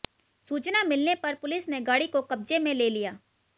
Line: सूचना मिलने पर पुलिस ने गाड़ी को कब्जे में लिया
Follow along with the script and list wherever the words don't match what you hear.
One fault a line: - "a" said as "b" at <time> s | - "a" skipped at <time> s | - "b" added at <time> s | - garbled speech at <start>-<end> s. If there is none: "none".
- "ले" added at 2.7 s